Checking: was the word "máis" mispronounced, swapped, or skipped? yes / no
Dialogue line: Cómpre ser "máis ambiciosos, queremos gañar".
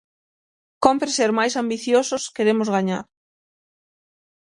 no